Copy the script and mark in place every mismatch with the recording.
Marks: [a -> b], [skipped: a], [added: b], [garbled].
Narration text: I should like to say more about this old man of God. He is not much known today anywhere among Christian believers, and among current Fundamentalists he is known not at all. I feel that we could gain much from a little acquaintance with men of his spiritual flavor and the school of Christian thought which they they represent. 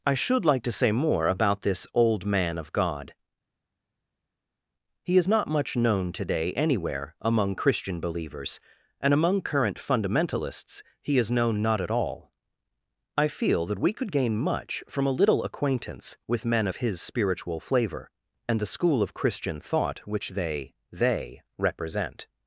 I should like to say more about this old man of God. He is not much known today anywhere among Christian believers, and among current Fundamentalists he is known not at all. I feel that we could gain much from a little acquaintance with men of his spiritual flavor and the school of Christian thought which they they represent.